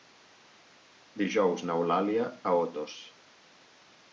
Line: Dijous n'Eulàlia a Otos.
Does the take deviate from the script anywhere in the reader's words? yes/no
no